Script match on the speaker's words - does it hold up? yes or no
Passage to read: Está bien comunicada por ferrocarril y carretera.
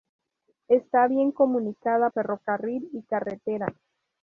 no